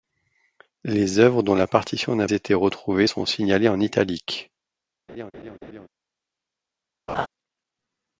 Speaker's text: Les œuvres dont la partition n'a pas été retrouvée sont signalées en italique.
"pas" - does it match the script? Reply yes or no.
no